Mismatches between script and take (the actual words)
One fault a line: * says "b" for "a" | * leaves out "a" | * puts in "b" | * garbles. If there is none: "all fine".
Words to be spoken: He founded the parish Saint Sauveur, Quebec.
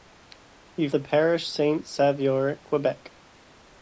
* leaves out "founded"